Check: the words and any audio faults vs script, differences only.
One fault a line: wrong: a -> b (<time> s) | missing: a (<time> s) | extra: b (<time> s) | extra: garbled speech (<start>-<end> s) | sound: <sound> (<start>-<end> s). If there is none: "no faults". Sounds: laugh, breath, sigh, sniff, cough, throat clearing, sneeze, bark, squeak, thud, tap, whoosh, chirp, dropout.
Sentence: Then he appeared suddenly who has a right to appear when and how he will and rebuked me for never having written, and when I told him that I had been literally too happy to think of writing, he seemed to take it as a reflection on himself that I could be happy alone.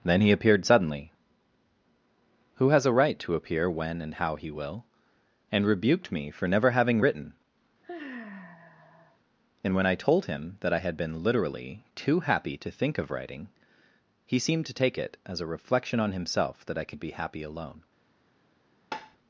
sound: sigh (7.8-9.2 s)
sound: tap (18.9-19.2 s)